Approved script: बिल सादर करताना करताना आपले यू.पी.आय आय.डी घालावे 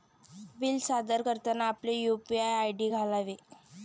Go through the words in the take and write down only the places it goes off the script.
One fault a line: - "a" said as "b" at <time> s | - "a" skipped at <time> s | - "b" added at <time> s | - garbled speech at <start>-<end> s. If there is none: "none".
- "करताना" skipped at 1.7 s